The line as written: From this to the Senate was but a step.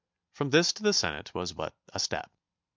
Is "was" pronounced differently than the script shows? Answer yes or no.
no